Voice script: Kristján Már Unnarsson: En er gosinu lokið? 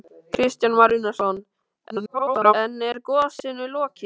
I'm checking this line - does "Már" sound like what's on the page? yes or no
yes